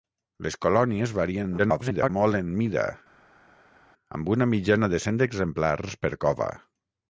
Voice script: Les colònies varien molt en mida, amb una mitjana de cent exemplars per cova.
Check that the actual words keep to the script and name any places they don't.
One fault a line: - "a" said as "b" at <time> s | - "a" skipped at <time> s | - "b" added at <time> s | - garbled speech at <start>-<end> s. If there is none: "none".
- garbled speech at 1.6-2.1 s